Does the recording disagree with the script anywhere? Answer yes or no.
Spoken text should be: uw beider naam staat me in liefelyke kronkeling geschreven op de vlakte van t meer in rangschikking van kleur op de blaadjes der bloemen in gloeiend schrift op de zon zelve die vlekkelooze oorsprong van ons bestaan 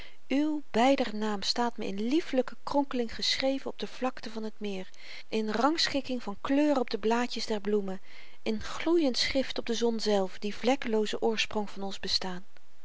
no